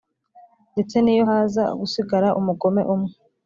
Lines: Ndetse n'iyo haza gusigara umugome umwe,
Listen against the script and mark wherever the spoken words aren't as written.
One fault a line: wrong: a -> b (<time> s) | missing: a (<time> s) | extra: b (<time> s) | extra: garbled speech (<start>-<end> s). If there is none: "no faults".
no faults